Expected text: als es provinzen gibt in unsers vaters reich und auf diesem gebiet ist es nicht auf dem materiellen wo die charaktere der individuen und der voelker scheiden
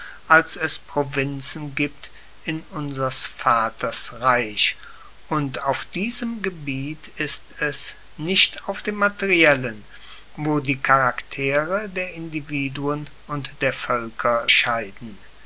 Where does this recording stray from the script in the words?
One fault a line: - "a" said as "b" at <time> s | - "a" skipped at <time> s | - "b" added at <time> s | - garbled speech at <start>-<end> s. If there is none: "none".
none